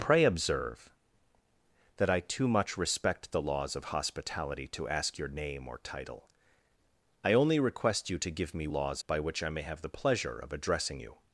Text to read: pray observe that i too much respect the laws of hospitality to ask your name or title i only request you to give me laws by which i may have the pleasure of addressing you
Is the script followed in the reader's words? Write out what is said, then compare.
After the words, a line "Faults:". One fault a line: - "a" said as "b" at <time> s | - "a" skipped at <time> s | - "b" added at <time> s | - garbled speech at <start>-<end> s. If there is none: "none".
pray observe that i too much respect the laws of hospitality to ask your name or title i only request you to give me laws by which i may have the pleasure of addressing you
Faults:
none